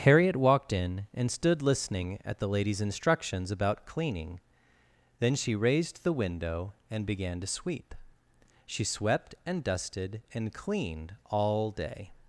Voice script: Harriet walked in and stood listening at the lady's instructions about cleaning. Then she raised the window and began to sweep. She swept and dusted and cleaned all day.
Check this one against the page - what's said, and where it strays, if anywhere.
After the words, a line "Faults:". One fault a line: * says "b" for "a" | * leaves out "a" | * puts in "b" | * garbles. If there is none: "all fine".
Harriet walked in and stood listening at the lady's instructions about cleaning. Then she raised the window and began to sweep. She swept and dusted and cleaned all day.
Faults:
all fine